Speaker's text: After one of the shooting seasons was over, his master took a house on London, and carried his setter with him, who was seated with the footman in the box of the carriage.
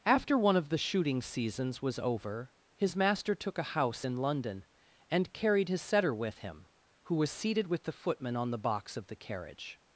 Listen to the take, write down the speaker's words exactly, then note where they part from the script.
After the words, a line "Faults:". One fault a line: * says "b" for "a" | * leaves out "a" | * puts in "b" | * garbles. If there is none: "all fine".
After one of the shooting seasons was over, his master took a house in London, and carried his setter with him, who was seated with the footman on the box of the carriage.
Faults:
* says "in" for "on"
* says "on" for "in"